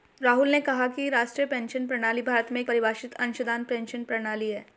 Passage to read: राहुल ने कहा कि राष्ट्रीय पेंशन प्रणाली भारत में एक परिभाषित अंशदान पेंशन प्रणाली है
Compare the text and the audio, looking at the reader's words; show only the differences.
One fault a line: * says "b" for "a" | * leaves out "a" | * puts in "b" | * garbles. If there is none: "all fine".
all fine